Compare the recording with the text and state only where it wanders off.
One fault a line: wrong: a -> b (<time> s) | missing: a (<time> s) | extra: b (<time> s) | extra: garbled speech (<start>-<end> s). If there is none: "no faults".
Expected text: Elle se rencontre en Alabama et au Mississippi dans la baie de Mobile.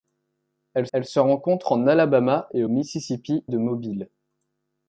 extra: elle (0.9 s)
missing: dans la baie (3.4 s)